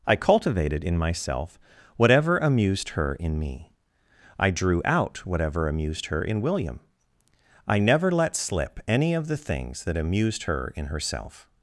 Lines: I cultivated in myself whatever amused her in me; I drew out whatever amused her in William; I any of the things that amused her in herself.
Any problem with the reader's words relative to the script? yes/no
yes